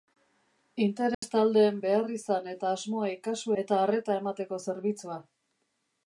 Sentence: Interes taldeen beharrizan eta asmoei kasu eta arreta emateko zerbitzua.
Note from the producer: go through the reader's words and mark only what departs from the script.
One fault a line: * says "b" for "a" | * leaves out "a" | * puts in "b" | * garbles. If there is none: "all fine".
all fine